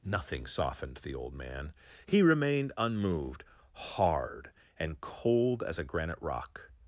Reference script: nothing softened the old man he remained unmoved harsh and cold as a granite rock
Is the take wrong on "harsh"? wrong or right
wrong